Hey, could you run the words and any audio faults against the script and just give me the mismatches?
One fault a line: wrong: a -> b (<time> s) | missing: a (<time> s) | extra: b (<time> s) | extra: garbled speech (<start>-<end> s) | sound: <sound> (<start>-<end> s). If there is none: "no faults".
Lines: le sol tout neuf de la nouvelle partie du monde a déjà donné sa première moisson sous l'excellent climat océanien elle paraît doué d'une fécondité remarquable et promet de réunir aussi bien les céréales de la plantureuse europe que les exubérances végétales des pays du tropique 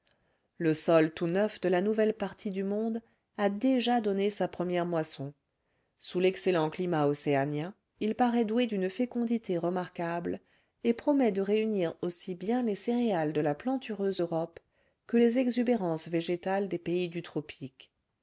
wrong: elle -> il (8.0 s)